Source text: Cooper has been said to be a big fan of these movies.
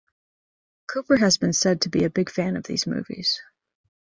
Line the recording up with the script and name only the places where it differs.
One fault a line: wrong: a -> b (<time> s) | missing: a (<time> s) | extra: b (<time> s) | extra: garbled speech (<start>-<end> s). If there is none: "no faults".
no faults